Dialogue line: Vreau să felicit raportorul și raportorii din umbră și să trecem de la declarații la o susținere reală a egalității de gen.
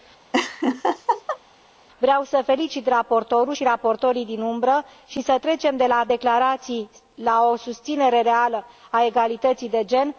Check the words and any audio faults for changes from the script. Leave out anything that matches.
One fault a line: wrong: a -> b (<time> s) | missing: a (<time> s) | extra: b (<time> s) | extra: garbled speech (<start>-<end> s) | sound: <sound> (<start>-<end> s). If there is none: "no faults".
sound: laugh (0.3-1.4 s)